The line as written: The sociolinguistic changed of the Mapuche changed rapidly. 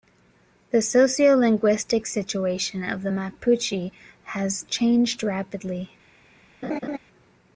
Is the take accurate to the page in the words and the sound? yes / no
no